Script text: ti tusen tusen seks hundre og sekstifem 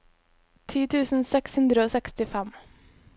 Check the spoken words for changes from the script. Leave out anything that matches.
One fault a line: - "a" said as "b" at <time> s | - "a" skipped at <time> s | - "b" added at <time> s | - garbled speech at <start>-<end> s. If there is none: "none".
- "tusen" skipped at 1.3 s